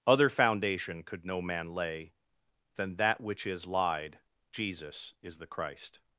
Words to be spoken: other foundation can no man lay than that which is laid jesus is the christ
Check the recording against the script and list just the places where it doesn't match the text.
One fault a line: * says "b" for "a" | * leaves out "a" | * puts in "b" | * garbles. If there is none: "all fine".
* says "could" for "can"
* says "lied" for "laid"